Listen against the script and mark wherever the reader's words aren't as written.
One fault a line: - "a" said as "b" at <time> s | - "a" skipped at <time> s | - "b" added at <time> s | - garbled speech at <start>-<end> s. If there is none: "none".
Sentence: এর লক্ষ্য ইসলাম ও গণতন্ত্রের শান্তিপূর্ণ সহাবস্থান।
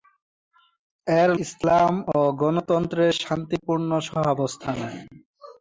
- "লক্ষ্য" skipped at 1.3 s